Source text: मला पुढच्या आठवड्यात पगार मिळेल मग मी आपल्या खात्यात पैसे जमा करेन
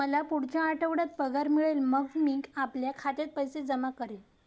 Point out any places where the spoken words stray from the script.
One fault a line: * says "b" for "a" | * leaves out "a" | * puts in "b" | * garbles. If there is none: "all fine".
all fine